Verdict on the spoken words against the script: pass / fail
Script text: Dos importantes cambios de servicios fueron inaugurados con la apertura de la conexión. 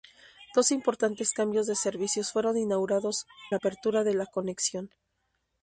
fail